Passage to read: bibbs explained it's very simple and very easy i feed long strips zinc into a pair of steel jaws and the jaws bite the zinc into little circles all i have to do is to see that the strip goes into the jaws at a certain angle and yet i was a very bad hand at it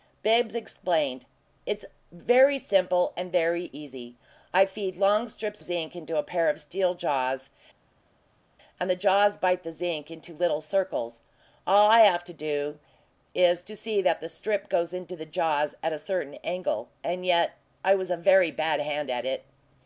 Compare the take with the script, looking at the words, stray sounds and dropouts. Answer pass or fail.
pass